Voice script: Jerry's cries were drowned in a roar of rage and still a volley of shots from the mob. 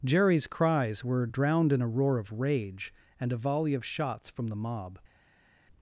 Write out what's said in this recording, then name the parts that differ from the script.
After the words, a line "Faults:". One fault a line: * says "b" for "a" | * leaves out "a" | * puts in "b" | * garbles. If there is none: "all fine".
Jerry's cries were drowned in a roar of rage and a volley of shots from the mob.
Faults:
* leaves out "still"